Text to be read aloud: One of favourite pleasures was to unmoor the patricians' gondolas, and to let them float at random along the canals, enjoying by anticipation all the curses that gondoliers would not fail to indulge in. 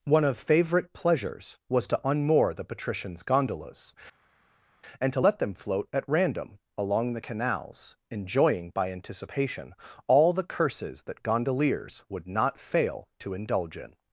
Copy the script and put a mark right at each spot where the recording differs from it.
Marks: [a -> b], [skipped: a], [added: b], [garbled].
One of favourite pleasures was to unmoor the patricians' gondolas, and to let them float at random along the canals, enjoying by anticipation all the curses that gondoliers would not fail to indulge in.